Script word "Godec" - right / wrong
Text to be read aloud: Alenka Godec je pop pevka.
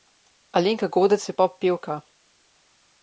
right